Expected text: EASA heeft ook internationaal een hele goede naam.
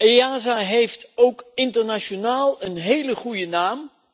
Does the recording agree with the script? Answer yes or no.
yes